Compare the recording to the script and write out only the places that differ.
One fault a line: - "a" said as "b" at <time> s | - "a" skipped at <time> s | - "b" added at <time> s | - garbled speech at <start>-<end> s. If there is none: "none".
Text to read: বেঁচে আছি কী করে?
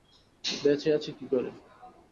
none